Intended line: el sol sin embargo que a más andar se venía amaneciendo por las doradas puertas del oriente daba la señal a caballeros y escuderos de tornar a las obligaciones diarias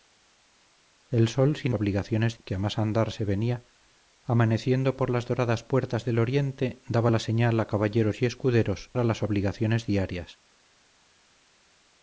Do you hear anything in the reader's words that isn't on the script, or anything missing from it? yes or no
yes